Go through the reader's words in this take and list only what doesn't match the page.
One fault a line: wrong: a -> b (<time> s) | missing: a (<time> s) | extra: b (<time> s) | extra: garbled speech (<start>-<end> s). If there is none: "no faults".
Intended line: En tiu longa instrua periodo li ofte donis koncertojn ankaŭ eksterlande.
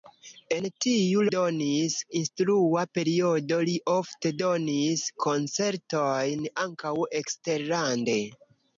wrong: longa -> donis (1.3 s)